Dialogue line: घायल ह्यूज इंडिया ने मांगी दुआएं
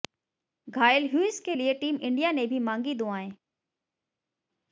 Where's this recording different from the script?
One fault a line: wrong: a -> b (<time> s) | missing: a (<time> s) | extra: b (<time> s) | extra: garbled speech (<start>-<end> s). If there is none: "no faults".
extra: के लिए टीम (1.4 s)
extra: भी (2.5 s)